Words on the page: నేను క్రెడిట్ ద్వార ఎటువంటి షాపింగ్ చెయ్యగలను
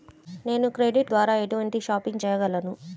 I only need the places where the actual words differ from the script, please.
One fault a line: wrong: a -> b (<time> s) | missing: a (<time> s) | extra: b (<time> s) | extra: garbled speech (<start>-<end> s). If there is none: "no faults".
no faults